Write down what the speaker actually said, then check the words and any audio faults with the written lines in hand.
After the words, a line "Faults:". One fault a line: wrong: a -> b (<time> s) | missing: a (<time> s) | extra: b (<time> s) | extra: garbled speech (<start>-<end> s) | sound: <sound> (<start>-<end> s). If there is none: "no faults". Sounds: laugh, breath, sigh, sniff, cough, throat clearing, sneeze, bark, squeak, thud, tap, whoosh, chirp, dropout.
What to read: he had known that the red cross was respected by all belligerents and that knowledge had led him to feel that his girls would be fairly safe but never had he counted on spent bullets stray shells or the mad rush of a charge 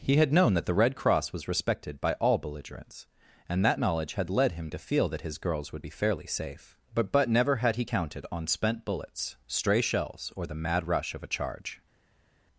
he had known that the red cross was respected by all belligerents and that knowledge had led him to feel that his girls would be fairly safe but but never had he counted on spent bullets stray shells or the mad rush of a charge
Faults:
extra: but (7.1 s)